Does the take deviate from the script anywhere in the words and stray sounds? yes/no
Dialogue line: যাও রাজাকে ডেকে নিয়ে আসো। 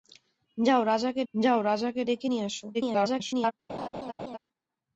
yes